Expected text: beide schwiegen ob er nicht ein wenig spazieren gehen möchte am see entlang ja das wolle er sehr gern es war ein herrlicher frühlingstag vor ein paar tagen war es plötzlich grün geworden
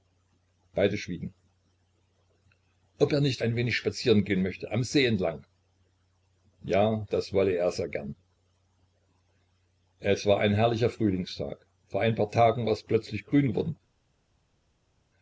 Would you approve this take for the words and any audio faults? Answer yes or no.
yes